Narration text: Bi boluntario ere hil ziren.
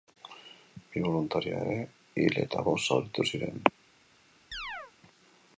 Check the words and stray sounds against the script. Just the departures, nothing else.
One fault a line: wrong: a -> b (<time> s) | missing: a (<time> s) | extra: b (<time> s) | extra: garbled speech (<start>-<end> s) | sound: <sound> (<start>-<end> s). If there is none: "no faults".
extra: eta bost zauritu (2.5 s)
sound: chirp (4.5-4.9 s)